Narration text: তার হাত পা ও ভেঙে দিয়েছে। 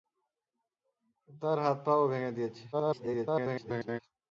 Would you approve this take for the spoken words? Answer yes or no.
no